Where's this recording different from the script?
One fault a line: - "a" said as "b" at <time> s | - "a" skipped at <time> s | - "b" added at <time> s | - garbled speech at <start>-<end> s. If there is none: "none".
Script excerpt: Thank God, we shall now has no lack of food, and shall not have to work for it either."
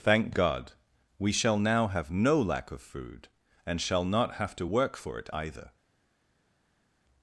- "has" said as "have" at 1.9 s